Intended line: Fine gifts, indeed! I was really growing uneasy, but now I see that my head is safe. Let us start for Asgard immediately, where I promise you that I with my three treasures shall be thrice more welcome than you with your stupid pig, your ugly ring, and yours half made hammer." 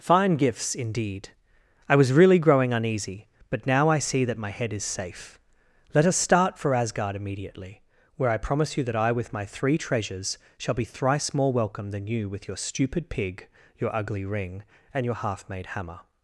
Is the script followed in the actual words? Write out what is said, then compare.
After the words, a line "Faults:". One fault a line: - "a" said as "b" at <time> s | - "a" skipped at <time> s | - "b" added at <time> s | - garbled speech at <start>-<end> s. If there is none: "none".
Fine gifts, indeed! I was really growing uneasy, but now I see that my head is safe. Let us start for Asgard immediately, where I promise you that I with my three treasures shall be thrice more welcome than you with your stupid pig, your ugly ring, and your half made hammer."
Faults:
- "yours" said as "your" at 15.0 s